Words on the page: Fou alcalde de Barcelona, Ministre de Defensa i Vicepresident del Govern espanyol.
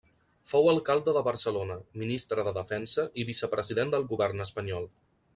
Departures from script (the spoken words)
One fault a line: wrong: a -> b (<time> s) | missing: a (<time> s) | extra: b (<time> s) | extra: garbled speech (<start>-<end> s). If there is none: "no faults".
no faults